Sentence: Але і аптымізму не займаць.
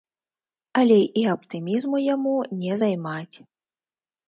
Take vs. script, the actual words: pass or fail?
fail